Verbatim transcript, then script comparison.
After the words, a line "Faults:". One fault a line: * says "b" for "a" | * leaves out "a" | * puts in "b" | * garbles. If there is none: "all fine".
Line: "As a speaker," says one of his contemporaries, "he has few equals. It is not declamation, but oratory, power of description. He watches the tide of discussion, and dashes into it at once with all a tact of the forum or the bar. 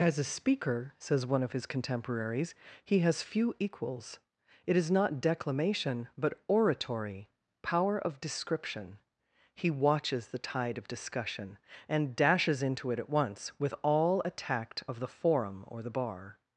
"As a speaker," says one of his contemporaries, "he has few equals. It is not declamation, but oratory, power of description. He watches the tide of discussion, and dashes into it at once with all a tact of the forum or the bar.
Faults:
all fine